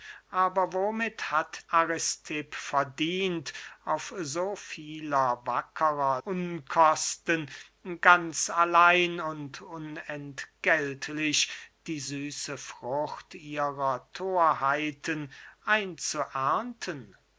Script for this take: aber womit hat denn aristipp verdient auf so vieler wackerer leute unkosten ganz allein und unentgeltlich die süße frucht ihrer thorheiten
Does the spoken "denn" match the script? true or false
false